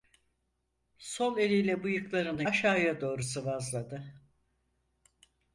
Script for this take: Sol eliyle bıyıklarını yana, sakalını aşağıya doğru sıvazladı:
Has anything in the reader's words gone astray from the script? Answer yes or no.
yes